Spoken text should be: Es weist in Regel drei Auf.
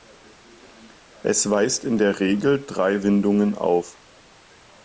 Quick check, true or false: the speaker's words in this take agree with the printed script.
false